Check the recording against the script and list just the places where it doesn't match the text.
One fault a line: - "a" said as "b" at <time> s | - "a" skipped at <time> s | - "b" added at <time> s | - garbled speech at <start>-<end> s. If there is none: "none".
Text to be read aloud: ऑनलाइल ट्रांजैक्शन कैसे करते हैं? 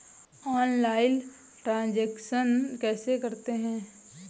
none